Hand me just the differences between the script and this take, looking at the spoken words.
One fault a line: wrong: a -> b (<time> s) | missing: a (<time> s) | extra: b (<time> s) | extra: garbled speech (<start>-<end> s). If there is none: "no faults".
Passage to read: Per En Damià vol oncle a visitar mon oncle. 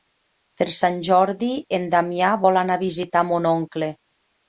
extra: Sant Jordi (0.8 s)
wrong: oncle -> anar (2.6 s)